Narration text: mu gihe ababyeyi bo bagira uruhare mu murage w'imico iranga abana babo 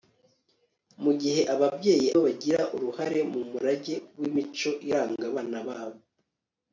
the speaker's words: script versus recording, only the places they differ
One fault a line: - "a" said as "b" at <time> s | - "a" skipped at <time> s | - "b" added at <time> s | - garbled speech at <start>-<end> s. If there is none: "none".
none